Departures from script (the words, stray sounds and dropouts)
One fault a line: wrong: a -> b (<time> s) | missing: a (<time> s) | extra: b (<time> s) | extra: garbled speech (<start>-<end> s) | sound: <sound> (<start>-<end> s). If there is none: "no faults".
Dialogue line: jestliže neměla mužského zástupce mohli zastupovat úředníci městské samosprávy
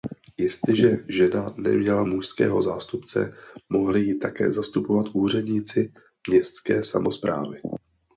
extra: žena (1.1 s)
extra: ji také (4.0 s)